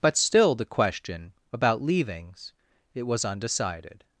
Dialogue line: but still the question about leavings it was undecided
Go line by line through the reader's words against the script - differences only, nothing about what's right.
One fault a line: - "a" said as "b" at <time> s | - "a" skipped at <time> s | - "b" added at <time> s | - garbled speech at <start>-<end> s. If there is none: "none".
none